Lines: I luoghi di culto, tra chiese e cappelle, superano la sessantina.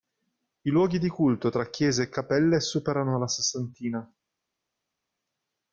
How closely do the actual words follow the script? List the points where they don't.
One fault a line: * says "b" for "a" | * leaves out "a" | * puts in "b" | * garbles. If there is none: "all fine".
all fine